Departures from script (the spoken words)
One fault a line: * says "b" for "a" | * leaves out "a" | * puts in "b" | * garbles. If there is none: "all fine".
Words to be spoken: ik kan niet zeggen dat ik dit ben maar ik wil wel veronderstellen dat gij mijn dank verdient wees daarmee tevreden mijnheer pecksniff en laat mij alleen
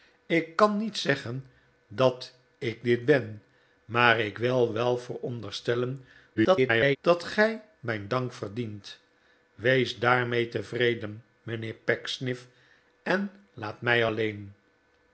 * garbles